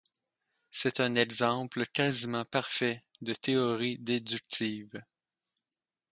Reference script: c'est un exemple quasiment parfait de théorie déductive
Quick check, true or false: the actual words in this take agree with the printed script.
true